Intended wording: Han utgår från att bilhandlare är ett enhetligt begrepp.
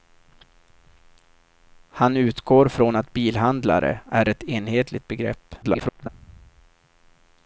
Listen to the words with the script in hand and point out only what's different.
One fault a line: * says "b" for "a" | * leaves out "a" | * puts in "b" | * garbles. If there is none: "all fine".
* garbles